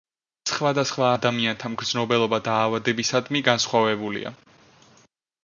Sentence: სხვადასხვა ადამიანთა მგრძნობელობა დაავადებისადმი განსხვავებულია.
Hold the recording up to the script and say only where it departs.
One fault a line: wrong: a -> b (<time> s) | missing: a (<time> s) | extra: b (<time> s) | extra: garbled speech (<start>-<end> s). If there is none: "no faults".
no faults